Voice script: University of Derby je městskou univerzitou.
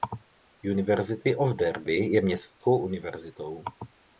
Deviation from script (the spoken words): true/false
false